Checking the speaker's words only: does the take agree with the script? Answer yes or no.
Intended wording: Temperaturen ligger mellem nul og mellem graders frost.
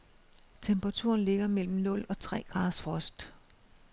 no